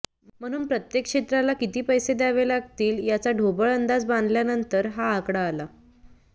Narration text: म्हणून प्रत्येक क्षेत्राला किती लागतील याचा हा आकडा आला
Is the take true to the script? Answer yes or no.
no